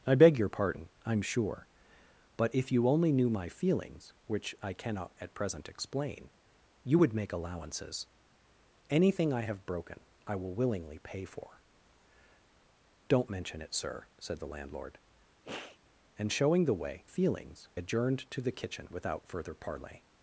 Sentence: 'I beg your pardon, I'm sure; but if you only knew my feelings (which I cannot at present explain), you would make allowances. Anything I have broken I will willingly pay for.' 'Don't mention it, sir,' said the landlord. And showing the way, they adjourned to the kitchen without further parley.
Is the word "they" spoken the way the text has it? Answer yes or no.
no